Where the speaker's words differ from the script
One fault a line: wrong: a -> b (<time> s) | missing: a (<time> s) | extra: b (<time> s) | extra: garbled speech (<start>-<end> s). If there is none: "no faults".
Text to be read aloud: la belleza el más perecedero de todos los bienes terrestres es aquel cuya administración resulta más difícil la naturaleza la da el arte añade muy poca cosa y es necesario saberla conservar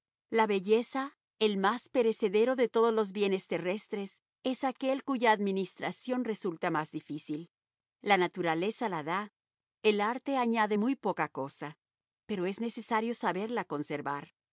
wrong: y -> pero (12.3 s)